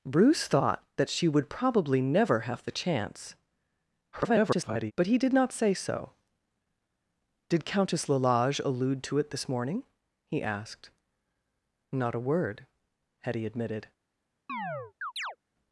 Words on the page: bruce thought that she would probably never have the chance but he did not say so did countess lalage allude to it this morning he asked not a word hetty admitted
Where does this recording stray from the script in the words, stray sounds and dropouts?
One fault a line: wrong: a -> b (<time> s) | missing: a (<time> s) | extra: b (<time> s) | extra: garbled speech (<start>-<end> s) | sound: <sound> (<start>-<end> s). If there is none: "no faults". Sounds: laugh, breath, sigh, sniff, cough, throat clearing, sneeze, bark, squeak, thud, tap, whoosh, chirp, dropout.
extra: garbled speech (4.1-4.9 s)
sound: chirp (14.5-15.4 s)